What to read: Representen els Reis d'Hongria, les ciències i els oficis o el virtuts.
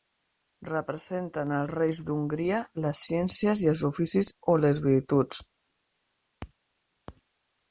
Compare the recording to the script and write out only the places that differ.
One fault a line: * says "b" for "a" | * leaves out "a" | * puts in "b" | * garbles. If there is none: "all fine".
* says "les" for "el"